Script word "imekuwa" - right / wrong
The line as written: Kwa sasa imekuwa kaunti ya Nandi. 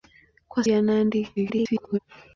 wrong